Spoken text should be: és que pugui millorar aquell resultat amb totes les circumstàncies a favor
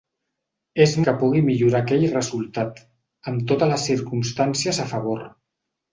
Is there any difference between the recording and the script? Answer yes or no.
no